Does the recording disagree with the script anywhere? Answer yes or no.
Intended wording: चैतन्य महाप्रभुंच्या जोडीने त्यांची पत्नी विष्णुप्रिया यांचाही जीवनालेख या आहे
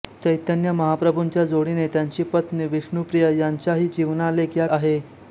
no